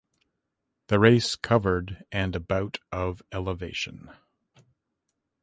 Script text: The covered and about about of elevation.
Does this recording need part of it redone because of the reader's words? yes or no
yes